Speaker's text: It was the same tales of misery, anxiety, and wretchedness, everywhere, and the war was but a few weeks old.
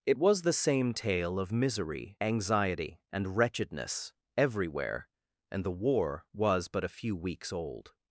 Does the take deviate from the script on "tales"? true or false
true